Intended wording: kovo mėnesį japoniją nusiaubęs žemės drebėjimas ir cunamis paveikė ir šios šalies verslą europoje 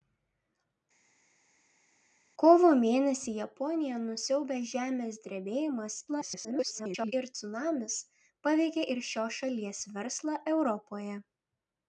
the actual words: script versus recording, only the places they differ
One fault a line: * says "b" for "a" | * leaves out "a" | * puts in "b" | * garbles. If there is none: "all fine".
* garbles